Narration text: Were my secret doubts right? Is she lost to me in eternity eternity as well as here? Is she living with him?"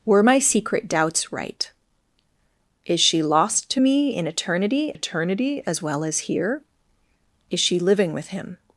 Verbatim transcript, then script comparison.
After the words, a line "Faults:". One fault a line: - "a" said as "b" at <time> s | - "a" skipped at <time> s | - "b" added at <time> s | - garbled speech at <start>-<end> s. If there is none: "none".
Were my secret doubts right? Is she lost to me in eternity eternity as well as here? Is she living with him?"
Faults:
none